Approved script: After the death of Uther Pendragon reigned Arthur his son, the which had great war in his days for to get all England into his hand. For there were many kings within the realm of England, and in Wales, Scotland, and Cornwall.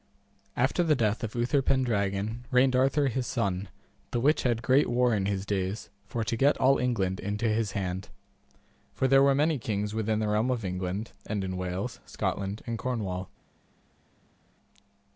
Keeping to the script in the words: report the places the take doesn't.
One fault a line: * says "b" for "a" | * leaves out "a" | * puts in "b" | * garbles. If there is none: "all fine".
all fine